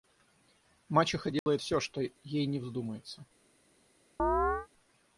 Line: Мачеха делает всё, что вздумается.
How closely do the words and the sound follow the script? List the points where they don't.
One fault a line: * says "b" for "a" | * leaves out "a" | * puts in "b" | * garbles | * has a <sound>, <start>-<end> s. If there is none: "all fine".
* has a dropout, 1.4-1.5 s
* puts in "ей ни"
* has a chirp, 4.2-4.7 s